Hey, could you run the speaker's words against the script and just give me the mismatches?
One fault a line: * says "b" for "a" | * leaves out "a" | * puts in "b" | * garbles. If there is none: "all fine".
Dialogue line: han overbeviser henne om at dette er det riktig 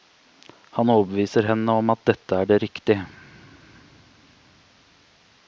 all fine